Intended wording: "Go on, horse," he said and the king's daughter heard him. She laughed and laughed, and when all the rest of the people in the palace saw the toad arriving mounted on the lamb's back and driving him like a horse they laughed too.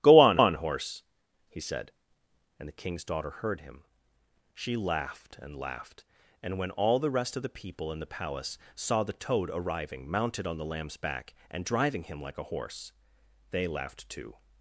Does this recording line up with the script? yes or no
no